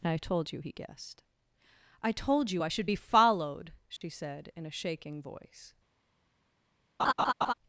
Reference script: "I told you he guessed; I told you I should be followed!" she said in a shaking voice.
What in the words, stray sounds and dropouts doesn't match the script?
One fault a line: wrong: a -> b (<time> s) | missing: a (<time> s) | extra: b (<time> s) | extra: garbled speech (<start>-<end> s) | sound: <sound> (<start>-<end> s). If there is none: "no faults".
sound: dropout (4.0-4.0 s)
sound: laugh (7.0-7.5 s)